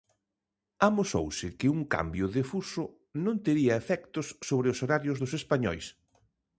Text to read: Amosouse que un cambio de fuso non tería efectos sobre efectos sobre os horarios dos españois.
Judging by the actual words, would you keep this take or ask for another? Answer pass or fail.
fail